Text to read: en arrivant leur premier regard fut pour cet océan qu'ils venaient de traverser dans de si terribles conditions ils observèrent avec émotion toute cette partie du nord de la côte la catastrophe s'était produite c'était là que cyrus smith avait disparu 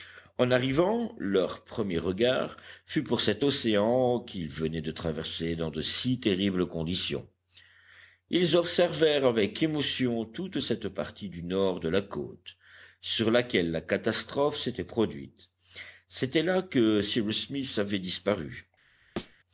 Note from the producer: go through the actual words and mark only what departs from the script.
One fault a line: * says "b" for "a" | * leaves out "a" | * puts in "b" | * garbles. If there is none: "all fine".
* puts in "sur laquelle"